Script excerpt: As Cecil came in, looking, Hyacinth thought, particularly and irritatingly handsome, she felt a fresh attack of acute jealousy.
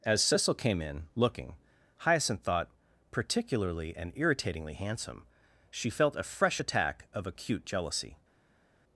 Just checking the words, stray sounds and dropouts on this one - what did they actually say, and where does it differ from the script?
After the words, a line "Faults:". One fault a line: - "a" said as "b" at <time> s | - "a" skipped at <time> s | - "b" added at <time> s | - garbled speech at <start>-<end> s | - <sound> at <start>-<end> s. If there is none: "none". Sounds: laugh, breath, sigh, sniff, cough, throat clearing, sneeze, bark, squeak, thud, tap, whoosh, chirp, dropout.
As Cecil came in, looking, Hyacinth thought, particularly and irritatingly handsome, she felt a fresh attack of acute jealousy.
Faults:
none